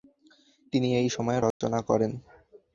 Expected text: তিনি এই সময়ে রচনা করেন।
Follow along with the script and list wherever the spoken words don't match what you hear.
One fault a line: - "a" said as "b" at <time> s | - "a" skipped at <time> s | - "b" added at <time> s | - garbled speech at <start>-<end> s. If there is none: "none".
none